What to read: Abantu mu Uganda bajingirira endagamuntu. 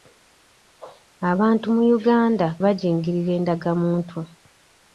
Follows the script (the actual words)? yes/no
yes